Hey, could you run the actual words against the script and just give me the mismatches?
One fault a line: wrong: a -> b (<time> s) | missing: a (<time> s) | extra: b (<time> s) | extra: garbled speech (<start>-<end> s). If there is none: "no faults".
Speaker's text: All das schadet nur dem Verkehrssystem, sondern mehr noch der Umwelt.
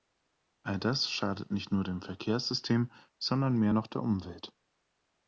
extra: nicht (1.5 s)